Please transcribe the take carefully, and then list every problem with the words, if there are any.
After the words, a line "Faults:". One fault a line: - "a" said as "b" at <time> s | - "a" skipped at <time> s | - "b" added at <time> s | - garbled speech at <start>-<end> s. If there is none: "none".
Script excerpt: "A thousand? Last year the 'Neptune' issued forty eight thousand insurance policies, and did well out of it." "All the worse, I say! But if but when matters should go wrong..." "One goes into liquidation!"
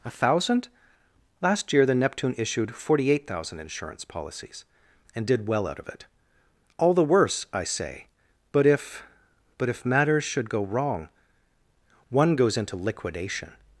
"A thousand? Last year the 'Neptune' issued forty eight thousand insurance policies, and did well out of it." "All the worse, I say! But if but if matters should go wrong..." "One goes into liquidation!"
Faults:
- "when" said as "if" at 9.7 s